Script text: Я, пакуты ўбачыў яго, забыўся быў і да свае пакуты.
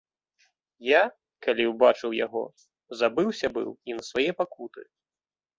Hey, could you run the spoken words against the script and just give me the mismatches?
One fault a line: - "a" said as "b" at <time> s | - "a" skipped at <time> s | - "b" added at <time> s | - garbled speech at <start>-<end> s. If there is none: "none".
- "пакуты" said as "калі" at 1.5 s
- "да" said as "на" at 4.0 s